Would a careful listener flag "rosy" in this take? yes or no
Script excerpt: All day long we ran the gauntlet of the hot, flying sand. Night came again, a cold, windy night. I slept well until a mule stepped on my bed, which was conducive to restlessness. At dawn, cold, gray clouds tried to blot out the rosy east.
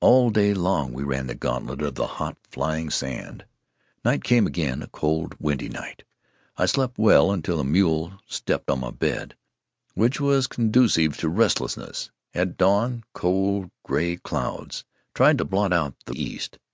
yes